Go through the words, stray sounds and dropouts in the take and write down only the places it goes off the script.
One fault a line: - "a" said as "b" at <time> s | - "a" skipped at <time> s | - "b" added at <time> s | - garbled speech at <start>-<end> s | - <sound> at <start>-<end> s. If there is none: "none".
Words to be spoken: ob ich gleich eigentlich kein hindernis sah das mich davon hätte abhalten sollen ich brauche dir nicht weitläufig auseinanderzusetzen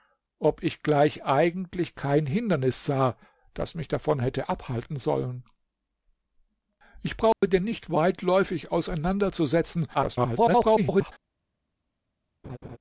- dropout at 7.3-7.4 s
- garbled speech at 9.9-11.1 s
- laugh at 12.4-12.8 s